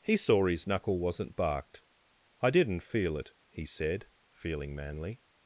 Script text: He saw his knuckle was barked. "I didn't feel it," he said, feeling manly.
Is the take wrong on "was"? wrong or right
wrong